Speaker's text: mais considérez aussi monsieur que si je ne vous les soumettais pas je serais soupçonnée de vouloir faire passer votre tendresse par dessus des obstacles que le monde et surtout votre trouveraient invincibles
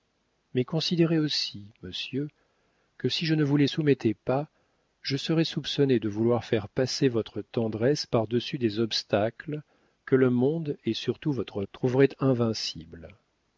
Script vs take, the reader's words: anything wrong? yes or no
no